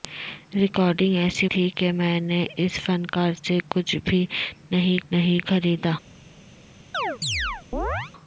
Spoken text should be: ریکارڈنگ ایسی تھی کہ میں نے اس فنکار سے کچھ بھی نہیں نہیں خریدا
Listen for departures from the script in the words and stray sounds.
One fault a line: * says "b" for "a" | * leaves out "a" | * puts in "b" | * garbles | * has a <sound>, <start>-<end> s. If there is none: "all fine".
* has a chirp, 6.9-8.1 s